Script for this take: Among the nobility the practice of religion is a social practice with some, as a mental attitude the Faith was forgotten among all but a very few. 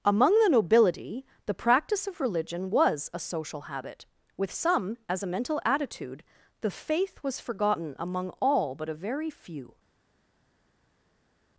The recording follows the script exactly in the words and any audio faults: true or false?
false